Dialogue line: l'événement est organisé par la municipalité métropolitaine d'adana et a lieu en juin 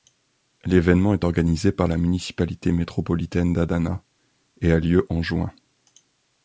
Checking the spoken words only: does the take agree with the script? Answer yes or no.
yes